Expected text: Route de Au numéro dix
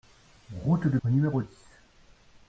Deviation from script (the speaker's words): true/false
false